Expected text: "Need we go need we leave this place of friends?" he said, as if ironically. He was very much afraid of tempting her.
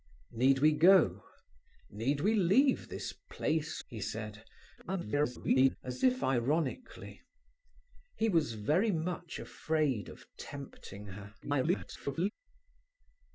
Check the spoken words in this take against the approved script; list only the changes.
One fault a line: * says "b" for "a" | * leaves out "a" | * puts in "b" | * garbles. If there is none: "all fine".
* leaves out "of friends"
* garbles
* garbles